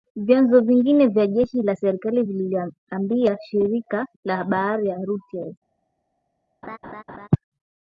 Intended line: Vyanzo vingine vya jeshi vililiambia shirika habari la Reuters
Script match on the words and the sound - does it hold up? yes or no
no